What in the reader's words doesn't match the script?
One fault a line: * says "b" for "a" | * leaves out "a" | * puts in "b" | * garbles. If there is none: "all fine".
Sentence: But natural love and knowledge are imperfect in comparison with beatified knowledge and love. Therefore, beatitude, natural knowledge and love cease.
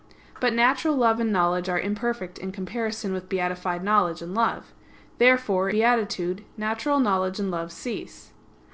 all fine